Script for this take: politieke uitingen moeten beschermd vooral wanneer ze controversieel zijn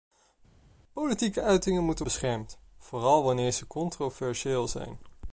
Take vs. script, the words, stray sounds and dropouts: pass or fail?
pass